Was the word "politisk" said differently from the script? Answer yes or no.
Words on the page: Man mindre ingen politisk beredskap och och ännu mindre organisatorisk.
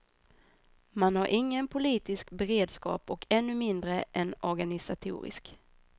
no